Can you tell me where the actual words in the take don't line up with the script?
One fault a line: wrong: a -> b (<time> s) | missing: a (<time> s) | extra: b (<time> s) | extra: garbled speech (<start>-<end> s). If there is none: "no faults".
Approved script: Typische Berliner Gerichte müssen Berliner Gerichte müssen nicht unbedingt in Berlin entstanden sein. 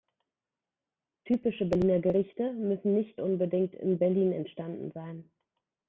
missing: Berliner Gerichte müssen (3.0 s)